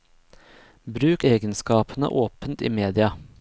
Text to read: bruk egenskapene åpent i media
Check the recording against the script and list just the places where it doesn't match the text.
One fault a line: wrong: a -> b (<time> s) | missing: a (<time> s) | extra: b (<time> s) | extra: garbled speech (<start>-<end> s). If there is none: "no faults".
no faults